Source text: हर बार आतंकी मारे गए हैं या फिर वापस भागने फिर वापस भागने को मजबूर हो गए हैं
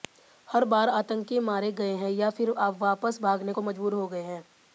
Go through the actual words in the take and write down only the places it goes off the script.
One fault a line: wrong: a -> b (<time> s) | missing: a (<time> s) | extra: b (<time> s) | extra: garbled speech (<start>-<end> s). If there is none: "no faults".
missing: फिर वापस भागने (3.5 s)